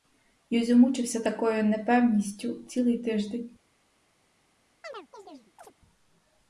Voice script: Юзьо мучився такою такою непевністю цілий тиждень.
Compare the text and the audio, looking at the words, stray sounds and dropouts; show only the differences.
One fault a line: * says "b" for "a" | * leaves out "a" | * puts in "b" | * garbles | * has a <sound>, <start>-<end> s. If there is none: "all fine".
* leaves out "такою"
* has a chirp, 4.8-5.7 s